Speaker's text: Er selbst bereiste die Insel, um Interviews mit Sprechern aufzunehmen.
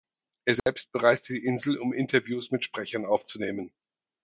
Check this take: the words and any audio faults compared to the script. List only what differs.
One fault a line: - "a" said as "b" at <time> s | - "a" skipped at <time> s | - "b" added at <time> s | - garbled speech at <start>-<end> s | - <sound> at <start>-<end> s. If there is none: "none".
- dropout at 0.6-0.7 s